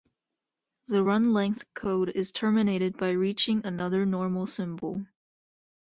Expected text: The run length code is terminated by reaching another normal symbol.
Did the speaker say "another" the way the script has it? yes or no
yes